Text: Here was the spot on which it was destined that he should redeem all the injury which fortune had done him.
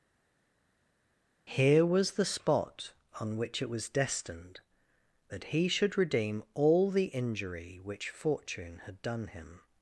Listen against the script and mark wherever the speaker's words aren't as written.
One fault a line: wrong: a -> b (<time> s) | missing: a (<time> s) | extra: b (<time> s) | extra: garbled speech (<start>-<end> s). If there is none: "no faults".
no faults